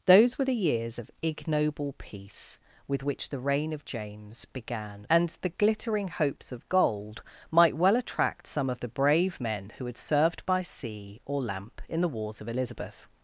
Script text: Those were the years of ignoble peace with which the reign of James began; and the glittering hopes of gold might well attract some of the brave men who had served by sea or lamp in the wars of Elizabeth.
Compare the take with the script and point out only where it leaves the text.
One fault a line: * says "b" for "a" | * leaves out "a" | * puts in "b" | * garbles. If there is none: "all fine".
all fine